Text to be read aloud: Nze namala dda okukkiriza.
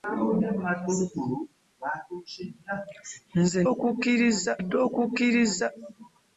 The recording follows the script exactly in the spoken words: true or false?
false